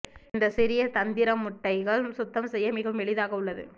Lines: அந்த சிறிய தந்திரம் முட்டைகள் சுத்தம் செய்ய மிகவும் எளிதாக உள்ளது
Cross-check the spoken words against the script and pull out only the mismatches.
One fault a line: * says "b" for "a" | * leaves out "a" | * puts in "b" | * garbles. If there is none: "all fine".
* says "இந்த" for "அந்த"